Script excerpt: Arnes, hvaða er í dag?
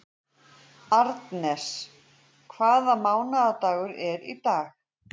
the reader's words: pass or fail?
fail